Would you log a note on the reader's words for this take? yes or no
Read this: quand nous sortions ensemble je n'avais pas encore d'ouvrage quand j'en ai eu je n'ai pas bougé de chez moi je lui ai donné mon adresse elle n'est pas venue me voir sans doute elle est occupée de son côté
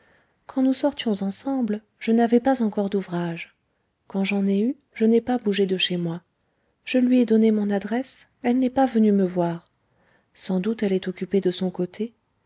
no